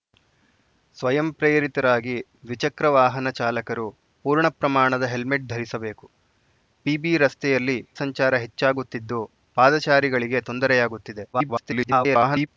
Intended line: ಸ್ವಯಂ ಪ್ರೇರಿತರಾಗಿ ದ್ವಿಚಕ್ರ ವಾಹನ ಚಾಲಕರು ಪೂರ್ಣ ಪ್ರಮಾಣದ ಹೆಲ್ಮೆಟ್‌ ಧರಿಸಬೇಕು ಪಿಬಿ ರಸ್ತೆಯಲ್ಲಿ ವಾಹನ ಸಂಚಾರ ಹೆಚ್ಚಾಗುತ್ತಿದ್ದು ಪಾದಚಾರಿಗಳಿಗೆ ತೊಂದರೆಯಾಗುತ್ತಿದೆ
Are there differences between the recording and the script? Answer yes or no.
yes